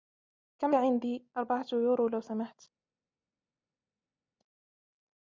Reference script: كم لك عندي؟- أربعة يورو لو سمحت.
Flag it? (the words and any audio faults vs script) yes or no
yes